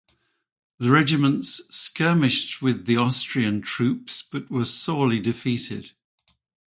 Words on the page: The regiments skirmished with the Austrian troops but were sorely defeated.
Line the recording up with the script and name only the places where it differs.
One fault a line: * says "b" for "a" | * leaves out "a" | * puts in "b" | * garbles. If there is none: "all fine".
all fine